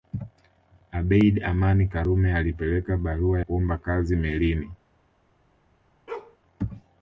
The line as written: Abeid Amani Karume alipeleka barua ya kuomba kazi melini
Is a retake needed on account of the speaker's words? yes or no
yes